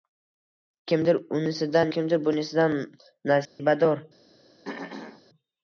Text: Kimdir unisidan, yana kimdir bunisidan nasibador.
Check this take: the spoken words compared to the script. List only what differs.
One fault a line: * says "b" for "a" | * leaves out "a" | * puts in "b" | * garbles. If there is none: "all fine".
* leaves out "yana"